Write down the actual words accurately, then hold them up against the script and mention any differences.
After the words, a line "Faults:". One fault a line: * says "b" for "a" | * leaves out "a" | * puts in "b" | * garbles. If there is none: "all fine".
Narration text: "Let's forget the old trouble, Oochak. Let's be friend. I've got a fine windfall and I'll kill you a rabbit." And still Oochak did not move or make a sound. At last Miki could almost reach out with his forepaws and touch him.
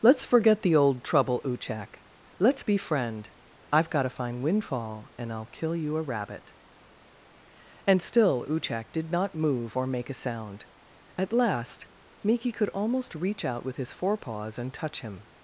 "Let's forget the old trouble, Oochak. Let's be friend. I've got a fine windfall and I'll kill you a rabbit." And still Oochak did not move or make a sound. At last Miki could almost reach out with his forepaws and touch him.
Faults:
all fine